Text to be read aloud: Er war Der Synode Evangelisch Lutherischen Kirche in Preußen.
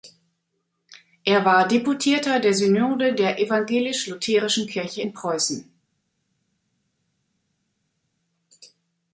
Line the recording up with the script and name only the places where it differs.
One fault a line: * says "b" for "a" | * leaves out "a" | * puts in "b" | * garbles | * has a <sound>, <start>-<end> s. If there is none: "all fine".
* puts in "Deputierter"
* puts in "der"